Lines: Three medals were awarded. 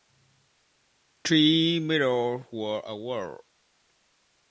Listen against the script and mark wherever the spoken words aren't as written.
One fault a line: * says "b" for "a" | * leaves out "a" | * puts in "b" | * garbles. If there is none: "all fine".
all fine